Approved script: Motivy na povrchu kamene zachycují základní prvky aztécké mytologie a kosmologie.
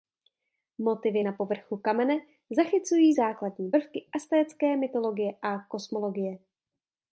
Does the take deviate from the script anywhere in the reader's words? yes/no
no